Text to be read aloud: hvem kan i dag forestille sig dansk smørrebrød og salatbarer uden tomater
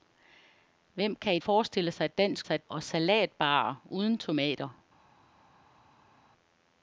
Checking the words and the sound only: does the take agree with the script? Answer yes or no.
no